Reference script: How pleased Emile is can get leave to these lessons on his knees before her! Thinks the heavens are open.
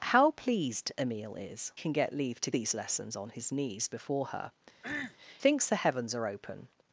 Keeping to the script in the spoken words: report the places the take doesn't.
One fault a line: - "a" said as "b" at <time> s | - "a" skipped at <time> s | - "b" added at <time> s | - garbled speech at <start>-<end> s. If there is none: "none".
none